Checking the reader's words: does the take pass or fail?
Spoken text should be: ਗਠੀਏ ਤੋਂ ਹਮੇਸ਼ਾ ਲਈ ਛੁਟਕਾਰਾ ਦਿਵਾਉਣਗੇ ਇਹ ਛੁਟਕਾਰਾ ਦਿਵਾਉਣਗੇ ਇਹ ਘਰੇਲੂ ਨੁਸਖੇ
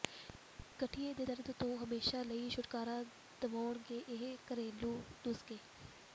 fail